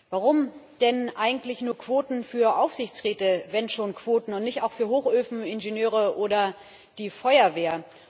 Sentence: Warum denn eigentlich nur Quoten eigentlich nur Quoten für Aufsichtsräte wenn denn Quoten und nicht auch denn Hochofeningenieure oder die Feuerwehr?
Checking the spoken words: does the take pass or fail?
fail